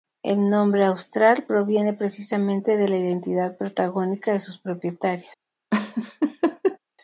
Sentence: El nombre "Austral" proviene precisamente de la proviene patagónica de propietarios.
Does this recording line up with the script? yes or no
no